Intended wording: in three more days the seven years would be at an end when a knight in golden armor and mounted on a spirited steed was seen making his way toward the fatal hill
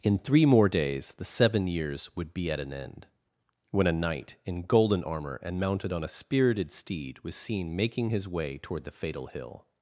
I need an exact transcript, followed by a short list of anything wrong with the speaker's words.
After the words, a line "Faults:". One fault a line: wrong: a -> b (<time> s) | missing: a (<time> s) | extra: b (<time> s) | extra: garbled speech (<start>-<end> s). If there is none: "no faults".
in three more days the seven years would be at an end when a knight in golden armor and mounted on a spirited steed was seen making his way toward the fatal hill
Faults:
no faults